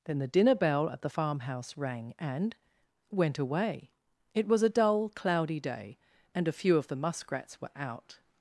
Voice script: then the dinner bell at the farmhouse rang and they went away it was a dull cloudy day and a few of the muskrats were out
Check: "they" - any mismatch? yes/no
yes